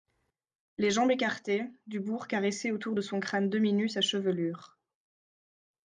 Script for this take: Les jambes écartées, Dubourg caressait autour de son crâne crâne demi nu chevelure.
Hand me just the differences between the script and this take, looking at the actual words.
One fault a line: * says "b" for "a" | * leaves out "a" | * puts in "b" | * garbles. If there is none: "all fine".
* leaves out "crâne"
* puts in "sa"